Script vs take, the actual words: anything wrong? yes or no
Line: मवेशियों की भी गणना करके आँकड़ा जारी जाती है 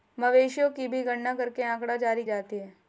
no